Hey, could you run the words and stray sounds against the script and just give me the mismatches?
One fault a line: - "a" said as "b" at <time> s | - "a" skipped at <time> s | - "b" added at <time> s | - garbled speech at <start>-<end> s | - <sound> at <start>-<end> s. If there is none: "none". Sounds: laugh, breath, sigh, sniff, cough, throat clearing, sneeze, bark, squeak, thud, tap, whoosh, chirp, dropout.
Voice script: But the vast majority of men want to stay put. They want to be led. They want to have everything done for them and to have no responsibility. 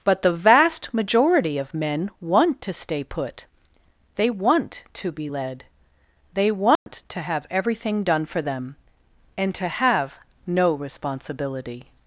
- dropout at 6.8-6.9 s